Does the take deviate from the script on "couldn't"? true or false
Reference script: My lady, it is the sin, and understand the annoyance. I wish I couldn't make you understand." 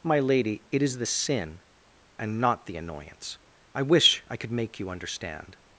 true